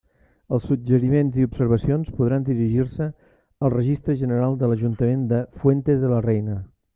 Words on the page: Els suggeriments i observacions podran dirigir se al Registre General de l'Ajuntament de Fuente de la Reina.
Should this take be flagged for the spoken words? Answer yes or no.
no